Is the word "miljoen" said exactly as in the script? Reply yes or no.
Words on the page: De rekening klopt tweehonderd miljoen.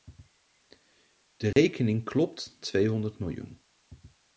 yes